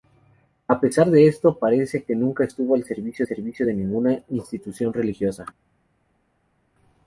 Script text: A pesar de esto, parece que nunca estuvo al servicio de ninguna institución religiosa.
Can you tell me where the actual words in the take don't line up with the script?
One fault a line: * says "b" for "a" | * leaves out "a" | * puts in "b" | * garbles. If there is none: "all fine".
* puts in "servicio"